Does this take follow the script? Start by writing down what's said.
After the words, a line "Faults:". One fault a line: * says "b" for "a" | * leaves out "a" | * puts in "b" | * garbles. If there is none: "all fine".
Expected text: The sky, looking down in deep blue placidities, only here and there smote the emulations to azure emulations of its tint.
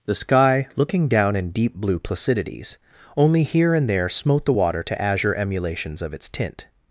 The sky, looking down in deep blue placidities, only here and there smote the water to azure emulations of its tint.
Faults:
* says "water" for "emulations"